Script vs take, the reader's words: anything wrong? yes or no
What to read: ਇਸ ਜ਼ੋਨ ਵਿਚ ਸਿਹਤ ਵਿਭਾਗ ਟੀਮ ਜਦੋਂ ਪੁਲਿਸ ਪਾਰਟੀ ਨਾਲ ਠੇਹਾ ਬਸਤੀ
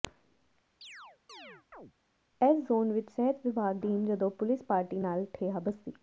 no